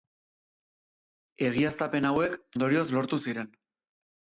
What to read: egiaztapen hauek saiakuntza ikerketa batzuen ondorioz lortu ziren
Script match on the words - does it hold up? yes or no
no